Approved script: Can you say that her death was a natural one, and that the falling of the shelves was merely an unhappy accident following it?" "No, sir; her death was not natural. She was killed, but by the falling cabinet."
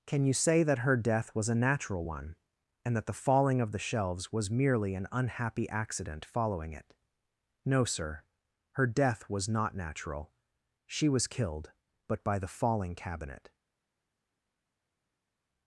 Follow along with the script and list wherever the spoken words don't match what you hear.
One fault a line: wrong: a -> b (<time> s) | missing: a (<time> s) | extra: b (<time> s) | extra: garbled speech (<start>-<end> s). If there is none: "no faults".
no faults